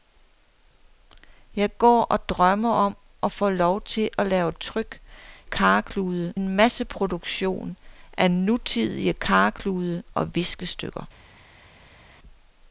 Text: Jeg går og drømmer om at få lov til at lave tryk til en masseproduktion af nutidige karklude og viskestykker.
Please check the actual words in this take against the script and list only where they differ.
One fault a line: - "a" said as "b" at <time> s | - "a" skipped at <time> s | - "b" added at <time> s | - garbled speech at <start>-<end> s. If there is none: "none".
- "til" said as "karklude" at 5.4 s